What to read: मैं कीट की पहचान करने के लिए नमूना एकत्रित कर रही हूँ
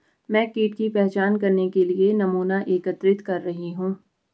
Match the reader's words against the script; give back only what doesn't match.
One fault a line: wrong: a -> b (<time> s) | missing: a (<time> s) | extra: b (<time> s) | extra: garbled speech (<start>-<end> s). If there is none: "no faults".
no faults